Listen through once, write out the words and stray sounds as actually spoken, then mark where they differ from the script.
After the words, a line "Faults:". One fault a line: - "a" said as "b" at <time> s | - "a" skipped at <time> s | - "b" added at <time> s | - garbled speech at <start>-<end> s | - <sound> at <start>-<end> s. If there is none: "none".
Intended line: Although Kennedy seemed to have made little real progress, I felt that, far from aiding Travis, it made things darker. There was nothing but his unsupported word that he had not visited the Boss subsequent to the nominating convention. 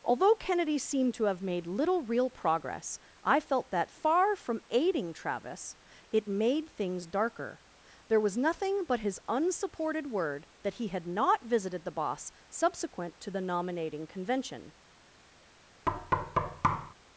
Although Kennedy seemed to have made little real progress, I felt that, far from aiding Travis, it made things darker. There was nothing but his unsupported word that he had not visited the Boss subsequent to the nominating convention.
Faults:
- thud at 15.9-16.9 s